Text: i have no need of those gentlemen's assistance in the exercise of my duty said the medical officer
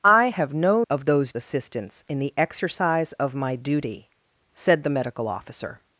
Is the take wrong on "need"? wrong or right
wrong